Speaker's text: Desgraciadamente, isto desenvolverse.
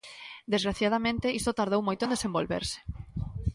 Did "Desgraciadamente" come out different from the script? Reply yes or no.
no